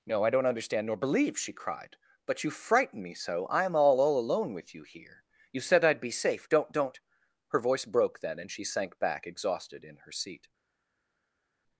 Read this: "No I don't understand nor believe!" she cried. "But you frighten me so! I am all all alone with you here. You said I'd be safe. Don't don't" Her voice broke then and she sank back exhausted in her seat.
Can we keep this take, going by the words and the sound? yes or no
yes